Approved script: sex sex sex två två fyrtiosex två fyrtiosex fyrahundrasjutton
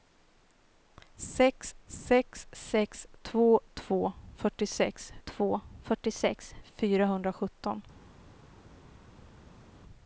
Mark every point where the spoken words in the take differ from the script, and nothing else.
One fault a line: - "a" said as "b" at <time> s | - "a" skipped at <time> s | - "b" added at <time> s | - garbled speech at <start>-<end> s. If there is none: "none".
none